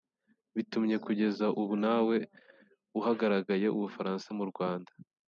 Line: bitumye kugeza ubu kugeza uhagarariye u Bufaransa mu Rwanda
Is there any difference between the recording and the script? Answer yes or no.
yes